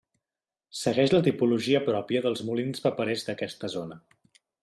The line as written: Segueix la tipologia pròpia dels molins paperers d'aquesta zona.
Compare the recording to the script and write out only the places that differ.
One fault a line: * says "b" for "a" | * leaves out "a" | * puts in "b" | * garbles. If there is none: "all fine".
all fine